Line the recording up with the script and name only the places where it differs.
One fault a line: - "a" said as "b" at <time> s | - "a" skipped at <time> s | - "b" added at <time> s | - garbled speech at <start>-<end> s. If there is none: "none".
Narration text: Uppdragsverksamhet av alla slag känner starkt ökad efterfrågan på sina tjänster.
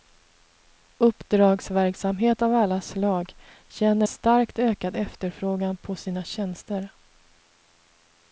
none